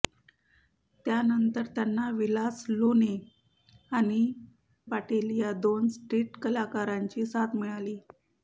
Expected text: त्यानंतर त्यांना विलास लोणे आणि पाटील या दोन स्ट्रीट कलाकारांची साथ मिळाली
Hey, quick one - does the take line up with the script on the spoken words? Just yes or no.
yes